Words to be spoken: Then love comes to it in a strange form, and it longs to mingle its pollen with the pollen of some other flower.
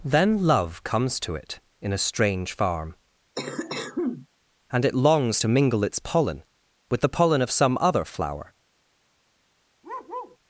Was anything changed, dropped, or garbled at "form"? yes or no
yes